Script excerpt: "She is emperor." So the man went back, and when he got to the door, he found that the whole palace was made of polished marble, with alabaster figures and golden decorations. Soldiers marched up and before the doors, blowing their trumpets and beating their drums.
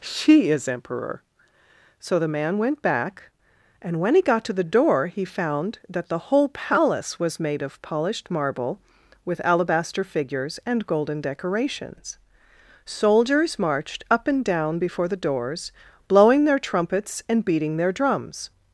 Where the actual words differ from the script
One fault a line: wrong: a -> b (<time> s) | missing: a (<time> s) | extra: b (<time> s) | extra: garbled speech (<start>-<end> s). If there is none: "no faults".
extra: down (14.4 s)